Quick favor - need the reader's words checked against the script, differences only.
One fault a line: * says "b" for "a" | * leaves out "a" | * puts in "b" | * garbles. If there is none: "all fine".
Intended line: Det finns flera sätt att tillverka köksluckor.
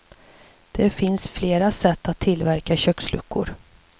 all fine